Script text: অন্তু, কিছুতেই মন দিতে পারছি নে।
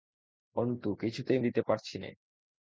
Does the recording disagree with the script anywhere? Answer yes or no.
yes